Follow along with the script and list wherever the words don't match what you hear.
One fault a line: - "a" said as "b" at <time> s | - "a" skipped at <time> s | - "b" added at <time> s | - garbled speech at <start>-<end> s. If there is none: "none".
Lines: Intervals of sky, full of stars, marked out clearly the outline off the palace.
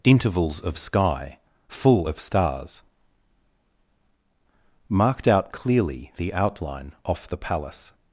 none